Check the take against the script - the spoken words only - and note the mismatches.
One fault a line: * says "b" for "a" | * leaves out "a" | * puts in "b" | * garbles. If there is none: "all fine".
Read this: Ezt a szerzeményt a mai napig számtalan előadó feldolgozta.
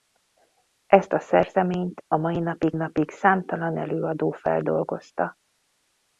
* puts in "napig"